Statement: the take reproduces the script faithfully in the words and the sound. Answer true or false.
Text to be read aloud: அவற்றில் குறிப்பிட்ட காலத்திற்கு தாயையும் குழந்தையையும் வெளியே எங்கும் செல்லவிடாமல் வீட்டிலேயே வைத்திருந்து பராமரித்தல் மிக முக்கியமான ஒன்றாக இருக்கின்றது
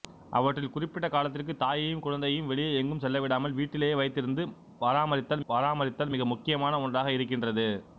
false